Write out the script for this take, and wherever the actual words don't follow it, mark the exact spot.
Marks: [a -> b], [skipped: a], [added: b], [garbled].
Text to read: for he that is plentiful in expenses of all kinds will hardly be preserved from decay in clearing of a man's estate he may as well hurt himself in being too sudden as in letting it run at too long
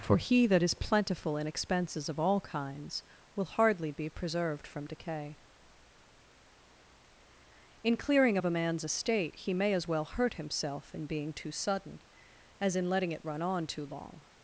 for he that is plentiful in expenses of all kinds will hardly be preserved from decay in clearing of a man's estate he may as well hurt himself in being too sudden as in letting it run [at -> on] too long